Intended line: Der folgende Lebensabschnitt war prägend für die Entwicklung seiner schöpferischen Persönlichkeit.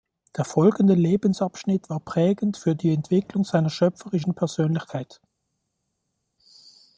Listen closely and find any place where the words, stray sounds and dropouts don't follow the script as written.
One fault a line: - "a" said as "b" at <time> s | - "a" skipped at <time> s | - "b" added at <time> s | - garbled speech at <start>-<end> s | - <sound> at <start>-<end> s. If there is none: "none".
none